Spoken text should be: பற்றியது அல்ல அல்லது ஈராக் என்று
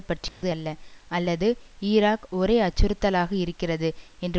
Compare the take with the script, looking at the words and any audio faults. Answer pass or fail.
fail